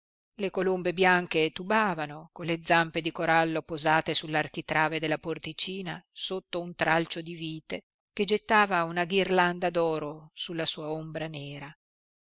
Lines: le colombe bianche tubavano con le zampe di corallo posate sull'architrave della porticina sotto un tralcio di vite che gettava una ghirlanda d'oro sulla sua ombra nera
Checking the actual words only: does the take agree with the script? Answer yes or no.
yes